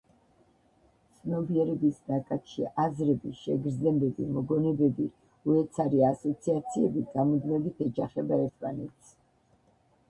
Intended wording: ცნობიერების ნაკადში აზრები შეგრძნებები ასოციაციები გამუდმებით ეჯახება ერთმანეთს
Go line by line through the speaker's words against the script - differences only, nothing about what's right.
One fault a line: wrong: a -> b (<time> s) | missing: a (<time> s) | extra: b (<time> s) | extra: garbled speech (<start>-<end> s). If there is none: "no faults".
extra: მოგონებები უეცარი (4.4 s)